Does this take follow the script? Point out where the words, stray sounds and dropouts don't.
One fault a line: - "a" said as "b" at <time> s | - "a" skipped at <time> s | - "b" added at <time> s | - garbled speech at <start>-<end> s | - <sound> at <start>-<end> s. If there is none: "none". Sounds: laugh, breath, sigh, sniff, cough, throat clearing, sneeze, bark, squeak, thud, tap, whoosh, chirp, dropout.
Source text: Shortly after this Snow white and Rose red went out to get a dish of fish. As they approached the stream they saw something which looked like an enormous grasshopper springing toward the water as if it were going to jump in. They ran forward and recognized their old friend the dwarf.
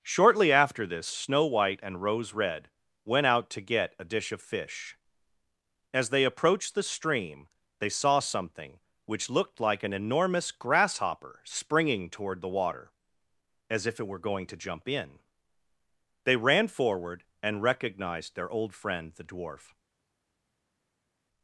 none